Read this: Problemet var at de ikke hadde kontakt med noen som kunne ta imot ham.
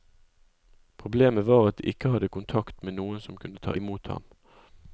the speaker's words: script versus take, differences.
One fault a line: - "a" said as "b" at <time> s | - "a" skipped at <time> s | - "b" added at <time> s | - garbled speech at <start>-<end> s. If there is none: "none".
none